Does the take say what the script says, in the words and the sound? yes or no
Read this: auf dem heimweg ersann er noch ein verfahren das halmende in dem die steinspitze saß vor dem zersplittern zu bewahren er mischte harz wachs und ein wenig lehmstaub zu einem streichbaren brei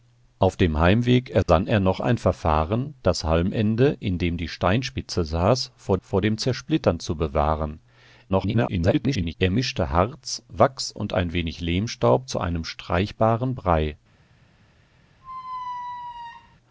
no